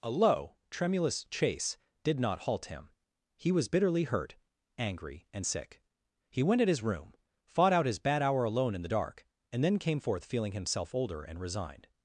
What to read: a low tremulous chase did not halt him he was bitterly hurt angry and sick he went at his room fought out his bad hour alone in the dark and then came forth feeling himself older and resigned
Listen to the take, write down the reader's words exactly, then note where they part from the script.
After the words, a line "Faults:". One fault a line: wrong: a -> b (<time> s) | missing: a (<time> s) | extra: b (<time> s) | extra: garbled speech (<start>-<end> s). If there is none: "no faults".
a low tremulous chase did not halt him he was bitterly hurt angry and sick he went at his room fought out his bad hour alone in the dark and then came forth feeling himself older and resigned
Faults:
no faults